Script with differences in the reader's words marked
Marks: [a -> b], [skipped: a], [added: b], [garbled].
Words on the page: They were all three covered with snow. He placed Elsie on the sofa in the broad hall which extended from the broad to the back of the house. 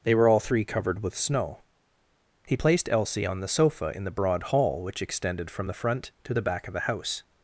They were all three covered with snow. He placed Elsie on the sofa in the broad hall which extended from the [broad -> front] to the back of the house.